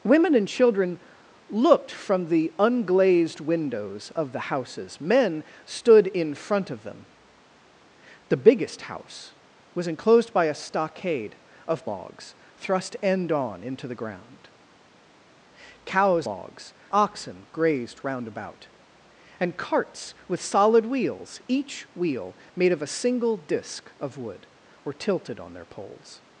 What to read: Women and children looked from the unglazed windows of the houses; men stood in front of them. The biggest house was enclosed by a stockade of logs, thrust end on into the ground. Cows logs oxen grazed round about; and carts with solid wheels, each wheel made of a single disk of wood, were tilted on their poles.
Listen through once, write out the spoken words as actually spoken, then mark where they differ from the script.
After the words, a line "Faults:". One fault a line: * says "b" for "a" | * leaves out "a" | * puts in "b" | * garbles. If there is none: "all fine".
Women and children looked from the unglazed windows of the houses; men stood in front of them. The biggest house was enclosed by a stockade of logs, thrust end on into the ground. Cows logs oxen grazed round about; and carts with solid wheels, each wheel made of a single disk of wood, were tilted on their poles.
Faults:
all fine